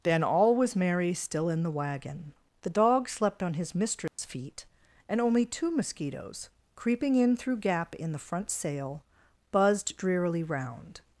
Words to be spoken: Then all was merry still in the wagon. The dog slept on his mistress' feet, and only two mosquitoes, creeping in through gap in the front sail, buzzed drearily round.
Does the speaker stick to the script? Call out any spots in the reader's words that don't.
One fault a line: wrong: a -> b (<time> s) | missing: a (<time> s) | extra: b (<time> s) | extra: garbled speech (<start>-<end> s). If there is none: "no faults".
no faults